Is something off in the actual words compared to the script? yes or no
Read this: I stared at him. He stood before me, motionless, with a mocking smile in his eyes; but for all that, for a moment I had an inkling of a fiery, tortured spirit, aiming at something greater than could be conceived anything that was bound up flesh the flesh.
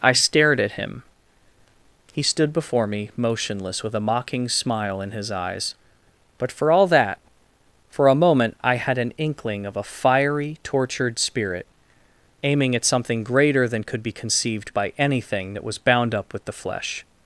yes